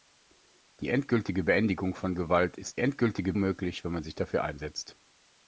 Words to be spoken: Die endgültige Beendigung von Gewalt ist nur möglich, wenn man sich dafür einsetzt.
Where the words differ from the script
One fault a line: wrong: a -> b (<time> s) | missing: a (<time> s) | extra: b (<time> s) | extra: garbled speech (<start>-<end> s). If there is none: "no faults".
wrong: nur -> endgültige (2.8 s)